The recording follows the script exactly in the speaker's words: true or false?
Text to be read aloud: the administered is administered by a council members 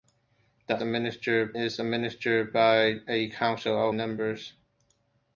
true